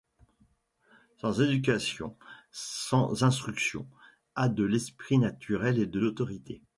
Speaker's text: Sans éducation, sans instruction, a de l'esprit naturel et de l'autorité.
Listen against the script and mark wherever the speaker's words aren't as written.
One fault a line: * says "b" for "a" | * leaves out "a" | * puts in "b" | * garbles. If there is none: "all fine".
all fine